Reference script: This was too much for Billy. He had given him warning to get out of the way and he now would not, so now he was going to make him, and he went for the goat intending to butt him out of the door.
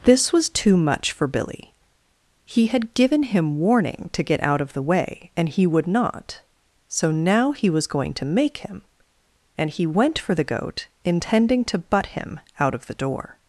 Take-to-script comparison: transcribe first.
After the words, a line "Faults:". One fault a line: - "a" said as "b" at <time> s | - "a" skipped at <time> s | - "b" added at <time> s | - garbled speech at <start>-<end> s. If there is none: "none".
This was too much for Billy. He had given him warning to get out of the way and he would not, so now he was going to make him, and he went for the goat intending to butt him out of the door.
Faults:
- "now" skipped at 5.7 s